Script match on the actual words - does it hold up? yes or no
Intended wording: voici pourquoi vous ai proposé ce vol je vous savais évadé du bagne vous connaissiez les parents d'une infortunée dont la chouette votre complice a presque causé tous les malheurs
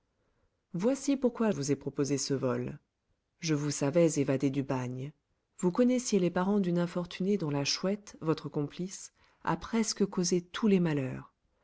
yes